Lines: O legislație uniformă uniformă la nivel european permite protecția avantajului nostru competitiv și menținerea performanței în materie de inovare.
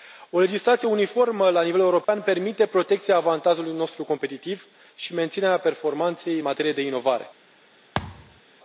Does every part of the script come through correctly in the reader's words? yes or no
no